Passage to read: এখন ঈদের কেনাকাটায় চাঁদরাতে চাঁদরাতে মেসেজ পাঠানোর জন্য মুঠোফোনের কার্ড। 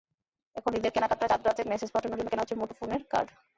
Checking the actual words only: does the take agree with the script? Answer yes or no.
no